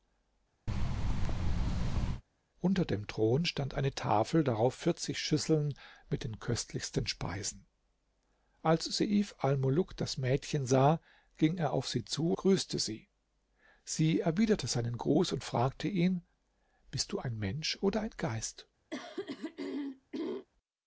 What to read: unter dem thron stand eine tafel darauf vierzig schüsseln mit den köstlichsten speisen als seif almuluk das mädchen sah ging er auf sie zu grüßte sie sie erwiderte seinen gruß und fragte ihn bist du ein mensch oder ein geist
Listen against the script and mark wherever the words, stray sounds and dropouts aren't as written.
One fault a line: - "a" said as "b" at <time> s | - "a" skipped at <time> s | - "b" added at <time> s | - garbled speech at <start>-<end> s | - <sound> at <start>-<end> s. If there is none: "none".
- thud at 0.7-2.2 s
- throat clearing at 18.9-20.5 s